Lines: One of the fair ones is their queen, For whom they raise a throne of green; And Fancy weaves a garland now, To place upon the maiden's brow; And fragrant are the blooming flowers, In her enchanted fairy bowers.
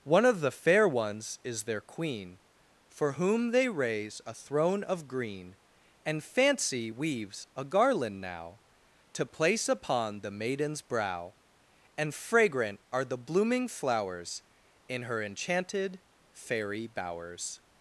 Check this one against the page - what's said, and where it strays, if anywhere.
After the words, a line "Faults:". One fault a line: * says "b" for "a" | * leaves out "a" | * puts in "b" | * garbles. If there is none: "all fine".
One of the fair ones is their queen, For whom they raise a throne of green; And Fancy weaves a garland now, To place upon the maiden's brow; And fragrant are the blooming flowers, In her enchanted fairy bowers.
Faults:
all fine